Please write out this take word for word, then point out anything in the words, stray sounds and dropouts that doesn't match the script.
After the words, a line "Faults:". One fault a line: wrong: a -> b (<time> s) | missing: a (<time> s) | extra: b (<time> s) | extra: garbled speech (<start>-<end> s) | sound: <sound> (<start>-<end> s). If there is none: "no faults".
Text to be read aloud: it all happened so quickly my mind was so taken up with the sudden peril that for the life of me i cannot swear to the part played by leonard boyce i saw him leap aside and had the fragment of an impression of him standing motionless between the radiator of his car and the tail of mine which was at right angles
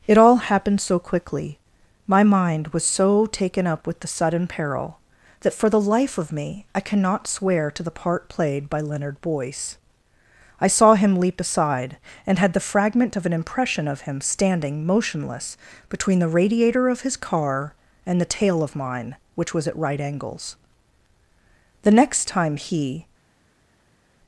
it all happened so quickly my mind was so taken up with the sudden peril that for the life of me i cannot swear to the part played by leonard boyce i saw him leap aside and had the fragment of an impression of him standing motionless between the radiator of his car and the tail of mine which was at right angles the next time he
Faults:
extra: the next time he (21.8 s)